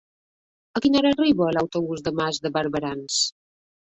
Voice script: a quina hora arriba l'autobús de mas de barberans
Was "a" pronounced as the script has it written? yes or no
yes